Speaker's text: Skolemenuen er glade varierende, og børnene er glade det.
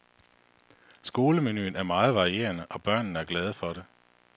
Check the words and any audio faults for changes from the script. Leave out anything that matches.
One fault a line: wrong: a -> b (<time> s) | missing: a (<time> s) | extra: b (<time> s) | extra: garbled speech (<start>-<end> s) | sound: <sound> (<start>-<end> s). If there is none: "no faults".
wrong: glade -> meget (1.8 s)
extra: for (3.5 s)